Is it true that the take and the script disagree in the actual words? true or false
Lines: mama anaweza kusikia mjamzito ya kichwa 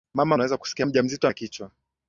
false